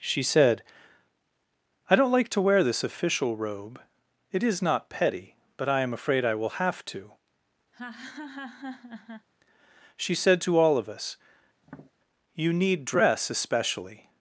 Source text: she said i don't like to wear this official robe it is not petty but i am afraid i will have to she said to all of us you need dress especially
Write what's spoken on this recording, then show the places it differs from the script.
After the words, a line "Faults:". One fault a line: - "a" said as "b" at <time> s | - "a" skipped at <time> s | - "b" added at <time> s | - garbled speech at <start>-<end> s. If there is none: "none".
she said i don't like to wear this official robe it is not petty but i am afraid i will have to she said to all of us you need dress especially
Faults:
none